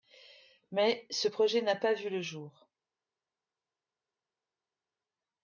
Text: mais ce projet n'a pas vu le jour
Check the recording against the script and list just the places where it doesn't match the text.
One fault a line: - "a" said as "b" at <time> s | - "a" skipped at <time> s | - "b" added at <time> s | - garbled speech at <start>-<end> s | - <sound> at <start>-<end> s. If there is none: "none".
none